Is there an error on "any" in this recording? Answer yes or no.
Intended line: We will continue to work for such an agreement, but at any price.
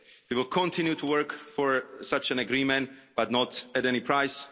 no